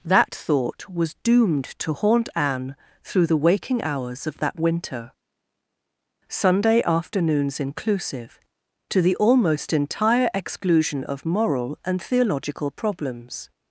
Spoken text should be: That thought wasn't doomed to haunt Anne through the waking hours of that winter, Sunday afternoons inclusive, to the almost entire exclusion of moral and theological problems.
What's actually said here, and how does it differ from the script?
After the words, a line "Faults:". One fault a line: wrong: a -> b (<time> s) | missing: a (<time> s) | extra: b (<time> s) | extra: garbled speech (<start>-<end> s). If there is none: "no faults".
That thought was doomed to haunt Anne through the waking hours of that winter, Sunday afternoons inclusive, to the almost entire exclusion of moral and theological problems.
Faults:
wrong: wasn't -> was (0.9 s)